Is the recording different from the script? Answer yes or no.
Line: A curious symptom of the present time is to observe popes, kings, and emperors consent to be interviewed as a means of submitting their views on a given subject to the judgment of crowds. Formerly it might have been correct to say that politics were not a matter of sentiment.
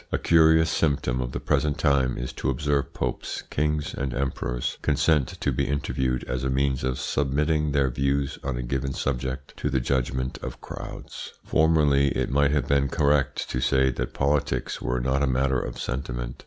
no